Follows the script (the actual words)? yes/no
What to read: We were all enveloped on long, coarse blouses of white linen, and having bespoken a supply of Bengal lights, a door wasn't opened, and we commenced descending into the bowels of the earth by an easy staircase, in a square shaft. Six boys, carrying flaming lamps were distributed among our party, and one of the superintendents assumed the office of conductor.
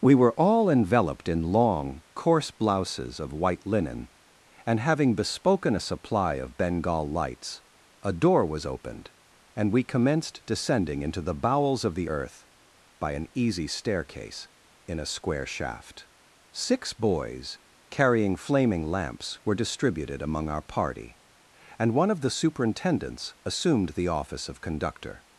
no